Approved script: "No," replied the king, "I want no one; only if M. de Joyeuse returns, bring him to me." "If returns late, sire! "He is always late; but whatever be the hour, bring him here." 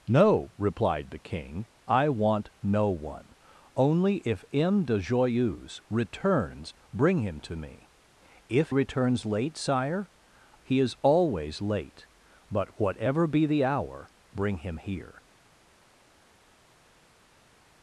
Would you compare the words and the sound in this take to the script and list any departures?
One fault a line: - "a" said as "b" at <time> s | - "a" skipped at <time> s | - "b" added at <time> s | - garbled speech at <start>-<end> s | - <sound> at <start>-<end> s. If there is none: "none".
none